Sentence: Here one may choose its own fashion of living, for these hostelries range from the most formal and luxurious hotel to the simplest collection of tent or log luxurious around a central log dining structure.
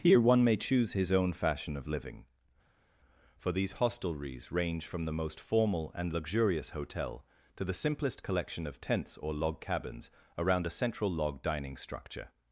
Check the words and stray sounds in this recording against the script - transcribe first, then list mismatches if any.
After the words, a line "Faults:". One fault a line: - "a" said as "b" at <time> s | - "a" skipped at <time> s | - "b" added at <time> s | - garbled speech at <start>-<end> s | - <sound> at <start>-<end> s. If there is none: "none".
Here one may choose his own fashion of living, for these hostelries range from the most formal and luxurious hotel to the simplest collection of tents or log cabins around a central log dining structure.
Faults:
- "its" said as "his" at 0.9 s
- "tent" said as "tents" at 8.8 s
- "luxurious" said as "cabins" at 9.6 s